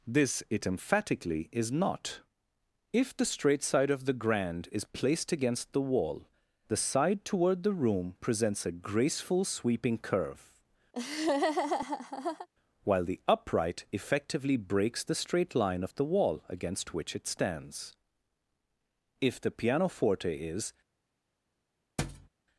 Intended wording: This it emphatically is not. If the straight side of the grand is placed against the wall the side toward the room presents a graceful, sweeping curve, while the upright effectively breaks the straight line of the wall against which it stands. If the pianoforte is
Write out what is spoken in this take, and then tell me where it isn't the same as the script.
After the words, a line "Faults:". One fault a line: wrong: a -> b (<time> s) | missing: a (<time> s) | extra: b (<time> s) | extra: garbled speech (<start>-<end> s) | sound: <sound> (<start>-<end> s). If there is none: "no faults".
This it emphatically is not. If the straight side of the grand is placed against the wall the side toward the room presents a graceful, sweeping curve, while the upright effectively breaks the straight line of the wall against which it stands. If the pianoforte is
Faults:
sound: laugh (10.9-12.5 s)
sound: thud (22.0-22.3 s)